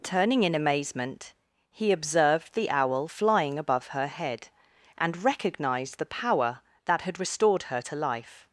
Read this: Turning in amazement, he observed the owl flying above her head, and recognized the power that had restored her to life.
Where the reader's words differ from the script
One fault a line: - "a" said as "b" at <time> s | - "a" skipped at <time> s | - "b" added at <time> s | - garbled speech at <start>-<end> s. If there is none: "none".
none